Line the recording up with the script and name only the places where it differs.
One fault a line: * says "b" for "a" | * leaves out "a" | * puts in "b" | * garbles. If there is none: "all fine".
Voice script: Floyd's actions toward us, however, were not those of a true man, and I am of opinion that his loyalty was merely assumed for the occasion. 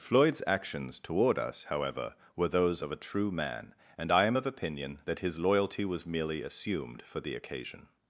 * leaves out "not"